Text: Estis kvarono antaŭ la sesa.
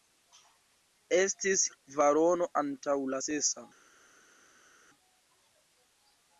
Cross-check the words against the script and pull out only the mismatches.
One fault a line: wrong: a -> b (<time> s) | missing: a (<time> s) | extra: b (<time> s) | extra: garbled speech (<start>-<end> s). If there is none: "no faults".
no faults